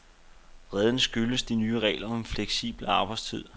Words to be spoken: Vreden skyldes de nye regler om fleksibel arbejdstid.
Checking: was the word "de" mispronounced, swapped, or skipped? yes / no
no